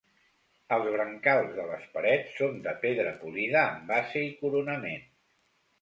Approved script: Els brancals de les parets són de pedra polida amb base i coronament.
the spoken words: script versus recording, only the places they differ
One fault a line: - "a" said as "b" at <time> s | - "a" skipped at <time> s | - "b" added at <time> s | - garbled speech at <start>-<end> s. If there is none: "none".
none